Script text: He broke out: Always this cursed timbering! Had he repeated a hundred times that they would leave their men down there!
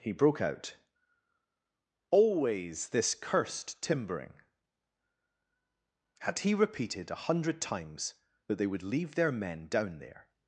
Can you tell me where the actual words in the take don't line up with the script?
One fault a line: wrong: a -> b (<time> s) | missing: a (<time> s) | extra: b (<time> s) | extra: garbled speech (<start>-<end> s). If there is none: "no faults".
no faults